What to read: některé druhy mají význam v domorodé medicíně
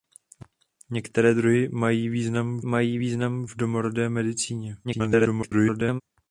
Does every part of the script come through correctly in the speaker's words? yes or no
no